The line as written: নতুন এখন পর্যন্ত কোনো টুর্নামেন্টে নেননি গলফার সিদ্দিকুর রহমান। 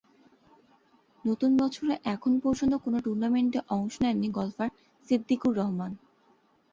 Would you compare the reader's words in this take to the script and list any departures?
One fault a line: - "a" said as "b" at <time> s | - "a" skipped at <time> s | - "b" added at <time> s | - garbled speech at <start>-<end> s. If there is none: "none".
- "বছরে" added at 1.6 s
- "অংশ" added at 3.7 s